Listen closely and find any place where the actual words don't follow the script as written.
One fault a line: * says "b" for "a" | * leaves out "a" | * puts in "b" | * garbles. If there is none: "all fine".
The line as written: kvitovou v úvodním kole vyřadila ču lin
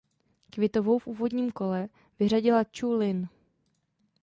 all fine